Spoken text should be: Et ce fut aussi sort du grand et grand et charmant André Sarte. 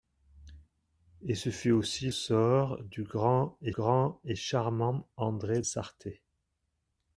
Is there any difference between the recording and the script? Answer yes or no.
no